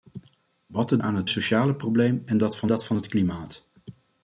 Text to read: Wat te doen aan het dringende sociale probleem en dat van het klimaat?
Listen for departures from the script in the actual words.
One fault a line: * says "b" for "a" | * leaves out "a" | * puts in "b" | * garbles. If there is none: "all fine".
* leaves out "doen"
* leaves out "dringende"
* puts in "dat van"